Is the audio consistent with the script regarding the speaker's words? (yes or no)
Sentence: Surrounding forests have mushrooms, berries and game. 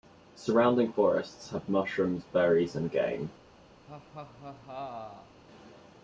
yes